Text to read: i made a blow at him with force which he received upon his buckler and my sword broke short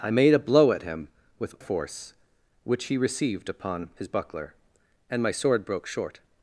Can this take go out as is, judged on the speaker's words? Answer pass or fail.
pass